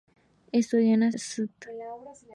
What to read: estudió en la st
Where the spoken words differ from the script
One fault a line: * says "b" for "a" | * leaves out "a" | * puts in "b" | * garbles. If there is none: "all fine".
all fine